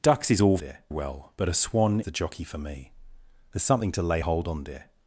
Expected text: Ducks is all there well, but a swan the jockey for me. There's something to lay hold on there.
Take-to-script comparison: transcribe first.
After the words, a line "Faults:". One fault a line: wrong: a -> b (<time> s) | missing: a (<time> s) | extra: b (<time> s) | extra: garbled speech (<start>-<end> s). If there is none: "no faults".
Ducks is all there well, but a swan the jockey for me. There's something to lay hold on there.
Faults:
no faults